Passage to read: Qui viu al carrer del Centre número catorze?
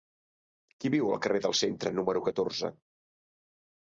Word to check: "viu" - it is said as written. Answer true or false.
true